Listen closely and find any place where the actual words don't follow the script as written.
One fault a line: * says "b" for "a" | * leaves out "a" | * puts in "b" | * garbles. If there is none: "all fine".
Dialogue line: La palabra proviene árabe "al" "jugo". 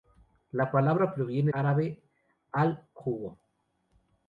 all fine